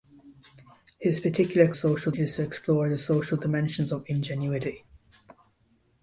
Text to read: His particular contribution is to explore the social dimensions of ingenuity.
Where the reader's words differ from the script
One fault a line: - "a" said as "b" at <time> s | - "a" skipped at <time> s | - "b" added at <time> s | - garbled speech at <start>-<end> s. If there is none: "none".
- "contribution" said as "social" at 1.7 s